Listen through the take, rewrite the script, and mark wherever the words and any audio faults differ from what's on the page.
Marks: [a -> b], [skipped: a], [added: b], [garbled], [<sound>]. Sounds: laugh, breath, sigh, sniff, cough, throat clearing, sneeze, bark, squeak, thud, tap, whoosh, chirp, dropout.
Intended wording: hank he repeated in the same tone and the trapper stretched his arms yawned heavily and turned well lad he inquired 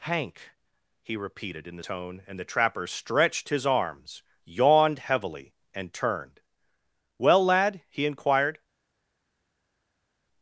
hank he repeated in the [skipped: same] tone and the trapper stretched his arms yawned heavily and turned well lad he inquired